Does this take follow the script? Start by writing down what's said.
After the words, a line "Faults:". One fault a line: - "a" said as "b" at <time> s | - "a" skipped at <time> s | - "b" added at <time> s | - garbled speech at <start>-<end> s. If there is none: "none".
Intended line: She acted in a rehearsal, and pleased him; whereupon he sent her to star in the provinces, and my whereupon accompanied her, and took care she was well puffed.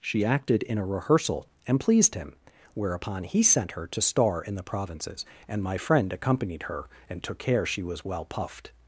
She acted in a rehearsal, and pleased him; whereupon he sent her to star in the provinces, and my friend accompanied her, and took care she was well puffed.
Faults:
- "whereupon" said as "friend" at 5.8 s